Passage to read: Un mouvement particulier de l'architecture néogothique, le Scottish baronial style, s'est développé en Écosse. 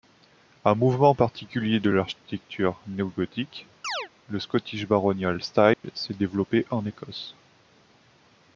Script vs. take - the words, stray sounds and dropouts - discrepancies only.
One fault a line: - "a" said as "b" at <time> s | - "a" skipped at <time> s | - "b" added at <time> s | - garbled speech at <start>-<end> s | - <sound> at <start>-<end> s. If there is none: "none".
- chirp at 3.8-4.1 s
- dropout at 5.7-5.8 s